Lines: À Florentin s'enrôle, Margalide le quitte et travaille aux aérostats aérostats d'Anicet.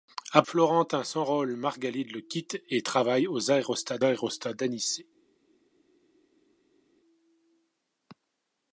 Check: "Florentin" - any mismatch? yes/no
no